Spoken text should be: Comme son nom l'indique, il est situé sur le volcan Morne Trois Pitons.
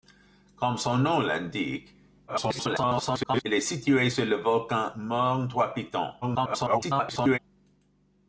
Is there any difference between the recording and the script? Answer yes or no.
yes